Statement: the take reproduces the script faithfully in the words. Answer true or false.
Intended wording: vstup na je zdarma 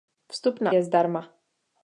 true